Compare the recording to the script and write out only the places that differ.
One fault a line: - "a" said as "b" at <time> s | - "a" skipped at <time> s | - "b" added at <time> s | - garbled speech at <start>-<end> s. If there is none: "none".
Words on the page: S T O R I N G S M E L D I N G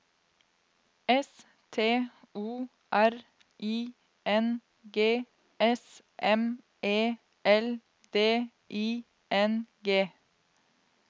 none